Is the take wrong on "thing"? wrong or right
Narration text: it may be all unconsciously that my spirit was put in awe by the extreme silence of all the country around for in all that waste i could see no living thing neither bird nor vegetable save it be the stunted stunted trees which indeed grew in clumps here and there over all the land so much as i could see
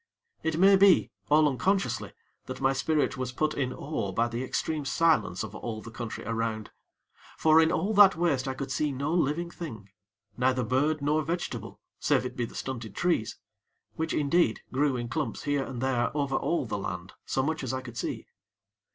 right